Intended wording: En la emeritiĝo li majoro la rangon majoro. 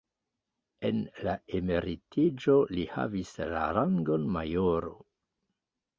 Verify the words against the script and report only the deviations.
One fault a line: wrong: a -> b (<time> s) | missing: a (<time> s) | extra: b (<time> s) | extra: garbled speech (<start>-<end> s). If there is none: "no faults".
wrong: majoro -> havis (2.9 s)